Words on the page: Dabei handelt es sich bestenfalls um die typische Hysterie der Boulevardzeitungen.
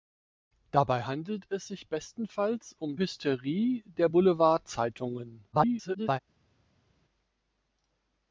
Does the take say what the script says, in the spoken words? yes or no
no